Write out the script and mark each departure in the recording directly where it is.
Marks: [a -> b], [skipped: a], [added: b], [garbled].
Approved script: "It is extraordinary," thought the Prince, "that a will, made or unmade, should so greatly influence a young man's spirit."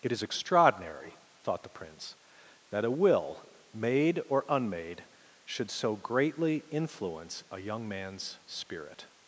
"It is extraordinary," thought the Prince, "that a will, made or unmade, should so greatly influence a young man's spirit."